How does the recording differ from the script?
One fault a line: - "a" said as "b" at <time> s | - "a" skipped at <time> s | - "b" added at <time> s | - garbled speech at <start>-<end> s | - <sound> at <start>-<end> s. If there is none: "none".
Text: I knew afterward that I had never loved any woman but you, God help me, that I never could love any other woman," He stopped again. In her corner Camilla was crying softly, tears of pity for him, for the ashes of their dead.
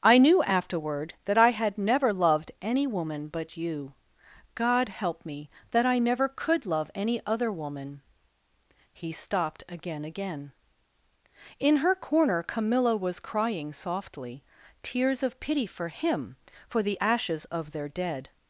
- "again" added at 10.0 s